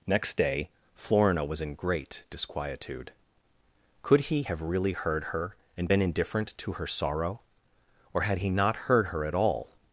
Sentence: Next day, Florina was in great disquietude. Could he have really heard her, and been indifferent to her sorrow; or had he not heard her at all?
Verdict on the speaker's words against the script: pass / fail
pass